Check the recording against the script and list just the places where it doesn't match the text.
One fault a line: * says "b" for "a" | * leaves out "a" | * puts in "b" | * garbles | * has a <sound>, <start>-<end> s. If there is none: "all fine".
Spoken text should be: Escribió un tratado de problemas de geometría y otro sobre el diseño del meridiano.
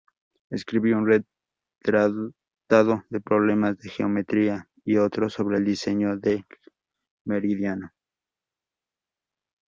all fine